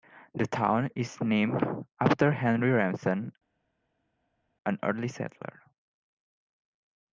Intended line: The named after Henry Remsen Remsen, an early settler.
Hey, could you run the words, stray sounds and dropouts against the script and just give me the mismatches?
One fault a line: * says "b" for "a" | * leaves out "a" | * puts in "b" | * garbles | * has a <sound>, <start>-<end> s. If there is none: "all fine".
* puts in "town is"
* leaves out "Remsen"